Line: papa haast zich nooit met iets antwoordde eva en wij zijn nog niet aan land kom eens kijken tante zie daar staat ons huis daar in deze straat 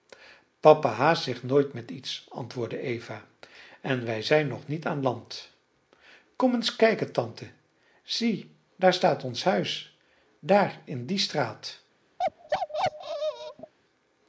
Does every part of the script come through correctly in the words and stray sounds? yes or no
no